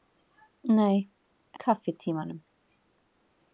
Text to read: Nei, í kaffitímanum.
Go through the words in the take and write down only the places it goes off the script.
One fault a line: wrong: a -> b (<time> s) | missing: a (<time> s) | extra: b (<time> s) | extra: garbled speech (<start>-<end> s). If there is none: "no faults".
no faults